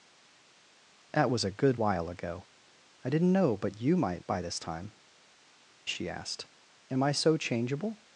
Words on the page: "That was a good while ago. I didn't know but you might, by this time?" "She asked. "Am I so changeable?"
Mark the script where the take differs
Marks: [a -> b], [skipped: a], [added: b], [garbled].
"That was a good while ago. I didn't know but you might, by this time?" "She asked. "Am I so changeable?"